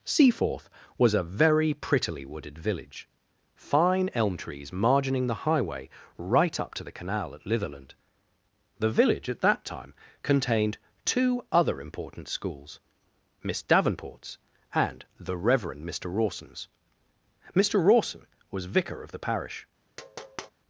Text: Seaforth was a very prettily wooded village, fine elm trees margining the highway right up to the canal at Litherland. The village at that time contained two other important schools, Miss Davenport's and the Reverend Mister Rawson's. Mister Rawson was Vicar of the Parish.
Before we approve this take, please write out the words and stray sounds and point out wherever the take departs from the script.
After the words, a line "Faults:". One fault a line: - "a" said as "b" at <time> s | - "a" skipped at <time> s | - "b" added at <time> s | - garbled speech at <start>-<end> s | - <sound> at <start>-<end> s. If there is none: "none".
Seaforth was a very prettily wooded village, fine elm trees margining the highway right up to the canal at Litherland. The village at that time contained two other important schools, Miss Davenport's and the Reverend Mister Rawson's. Mister Rawson was Vicar of the Parish.
Faults:
- tap at 20.0-20.5 s